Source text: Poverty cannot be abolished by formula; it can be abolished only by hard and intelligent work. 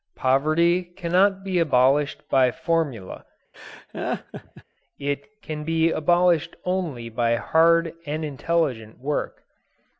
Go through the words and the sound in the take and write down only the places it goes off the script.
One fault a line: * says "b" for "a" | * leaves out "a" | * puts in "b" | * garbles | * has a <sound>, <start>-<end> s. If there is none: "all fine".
* has a laugh, 3.5-4.6 s